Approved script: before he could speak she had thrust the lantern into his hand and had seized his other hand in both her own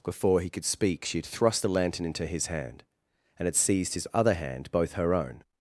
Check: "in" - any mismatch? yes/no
yes